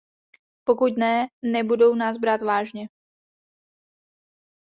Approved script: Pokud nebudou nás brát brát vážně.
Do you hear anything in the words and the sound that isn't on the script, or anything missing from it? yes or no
yes